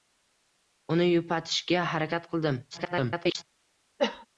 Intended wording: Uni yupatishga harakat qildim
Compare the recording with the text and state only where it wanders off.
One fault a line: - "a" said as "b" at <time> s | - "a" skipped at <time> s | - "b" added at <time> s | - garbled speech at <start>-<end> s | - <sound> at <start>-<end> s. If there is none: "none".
- garbled speech at 2.7-3.4 s
- cough at 4.0-4.3 s